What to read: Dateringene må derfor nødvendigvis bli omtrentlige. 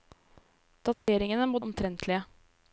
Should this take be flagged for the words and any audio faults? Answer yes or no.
yes